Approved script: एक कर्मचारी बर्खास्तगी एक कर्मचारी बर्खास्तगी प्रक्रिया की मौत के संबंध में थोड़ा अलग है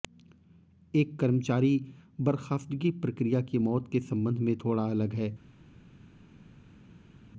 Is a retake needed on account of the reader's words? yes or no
yes